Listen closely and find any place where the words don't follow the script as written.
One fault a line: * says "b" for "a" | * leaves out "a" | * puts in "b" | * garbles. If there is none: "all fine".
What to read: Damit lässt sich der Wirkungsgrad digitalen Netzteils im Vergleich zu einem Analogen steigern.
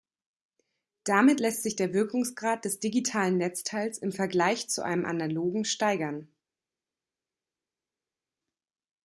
* puts in "des"